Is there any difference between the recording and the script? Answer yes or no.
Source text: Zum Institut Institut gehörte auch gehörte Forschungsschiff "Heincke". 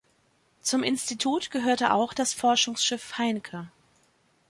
yes